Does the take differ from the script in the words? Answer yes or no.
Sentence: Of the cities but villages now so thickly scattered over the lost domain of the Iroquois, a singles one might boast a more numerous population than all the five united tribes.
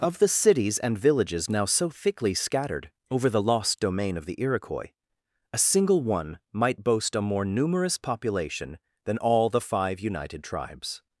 yes